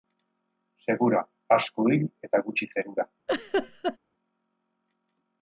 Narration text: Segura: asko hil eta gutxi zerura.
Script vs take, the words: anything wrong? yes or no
no